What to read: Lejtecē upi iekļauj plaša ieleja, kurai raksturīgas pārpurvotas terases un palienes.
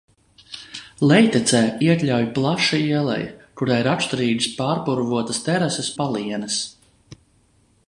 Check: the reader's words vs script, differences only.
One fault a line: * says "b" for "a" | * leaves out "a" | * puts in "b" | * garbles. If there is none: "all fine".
* leaves out "upi"
* leaves out "un"